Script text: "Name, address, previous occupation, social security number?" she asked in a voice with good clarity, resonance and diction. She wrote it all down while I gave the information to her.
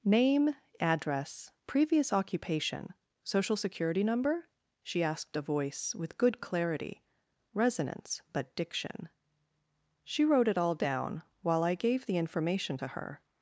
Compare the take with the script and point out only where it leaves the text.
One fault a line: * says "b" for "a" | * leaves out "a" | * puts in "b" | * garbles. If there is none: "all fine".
* leaves out "in"
* says "but" for "and"